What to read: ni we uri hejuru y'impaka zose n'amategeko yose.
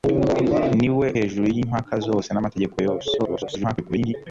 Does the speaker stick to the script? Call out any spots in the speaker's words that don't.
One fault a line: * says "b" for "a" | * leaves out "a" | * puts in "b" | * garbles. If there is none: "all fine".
* leaves out "uri"
* garbles